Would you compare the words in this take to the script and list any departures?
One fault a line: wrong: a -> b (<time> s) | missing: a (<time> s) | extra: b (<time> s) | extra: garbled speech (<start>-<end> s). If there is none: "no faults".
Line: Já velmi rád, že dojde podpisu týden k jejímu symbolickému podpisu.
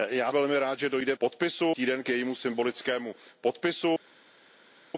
no faults